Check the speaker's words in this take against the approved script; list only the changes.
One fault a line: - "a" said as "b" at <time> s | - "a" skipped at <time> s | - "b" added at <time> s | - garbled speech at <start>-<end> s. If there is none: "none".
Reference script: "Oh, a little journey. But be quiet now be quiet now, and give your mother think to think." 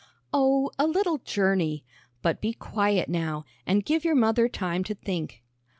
- "be quiet now" skipped at 3.4 s
- "think" said as "time" at 4.5 s